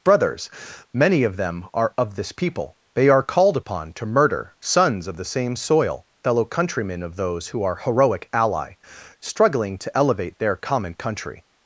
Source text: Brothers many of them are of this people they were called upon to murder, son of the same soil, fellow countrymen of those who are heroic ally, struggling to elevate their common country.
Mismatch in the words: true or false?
true